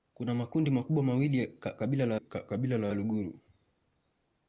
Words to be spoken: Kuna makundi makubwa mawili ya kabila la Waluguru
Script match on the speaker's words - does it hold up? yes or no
no